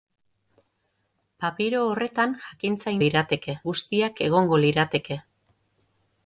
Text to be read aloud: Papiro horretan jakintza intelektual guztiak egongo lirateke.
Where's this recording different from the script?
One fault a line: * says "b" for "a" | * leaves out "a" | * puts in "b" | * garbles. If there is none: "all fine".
* says "lirateke" for "intelektual"